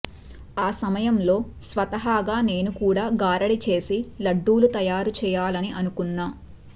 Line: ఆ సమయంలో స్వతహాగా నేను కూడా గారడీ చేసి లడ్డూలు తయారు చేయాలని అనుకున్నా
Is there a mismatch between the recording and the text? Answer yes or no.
no